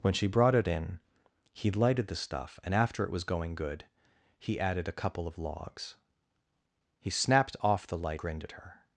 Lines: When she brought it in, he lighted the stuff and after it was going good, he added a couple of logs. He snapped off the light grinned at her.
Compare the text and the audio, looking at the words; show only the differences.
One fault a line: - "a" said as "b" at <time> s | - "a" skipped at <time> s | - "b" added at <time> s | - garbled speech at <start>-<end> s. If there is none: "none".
none